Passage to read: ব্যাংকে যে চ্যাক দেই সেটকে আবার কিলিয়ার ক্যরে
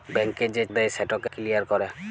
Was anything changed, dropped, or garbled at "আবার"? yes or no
yes